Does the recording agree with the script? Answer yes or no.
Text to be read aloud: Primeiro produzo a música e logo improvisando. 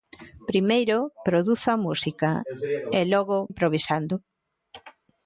yes